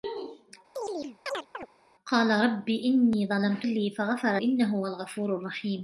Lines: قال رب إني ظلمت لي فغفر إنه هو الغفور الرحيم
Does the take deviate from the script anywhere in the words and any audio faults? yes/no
yes